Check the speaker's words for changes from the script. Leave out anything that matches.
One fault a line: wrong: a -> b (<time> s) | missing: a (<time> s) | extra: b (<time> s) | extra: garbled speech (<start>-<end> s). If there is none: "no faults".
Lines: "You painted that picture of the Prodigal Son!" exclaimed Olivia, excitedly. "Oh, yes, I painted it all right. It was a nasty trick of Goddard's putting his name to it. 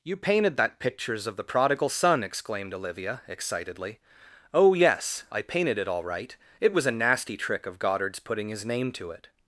wrong: picture -> pictures (0.8 s)